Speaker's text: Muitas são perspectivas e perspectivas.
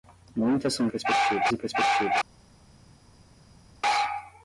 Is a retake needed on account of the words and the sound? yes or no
no